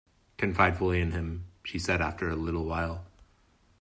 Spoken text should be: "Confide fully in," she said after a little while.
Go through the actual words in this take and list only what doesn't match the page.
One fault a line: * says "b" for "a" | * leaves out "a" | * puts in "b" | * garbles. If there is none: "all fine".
* puts in "him"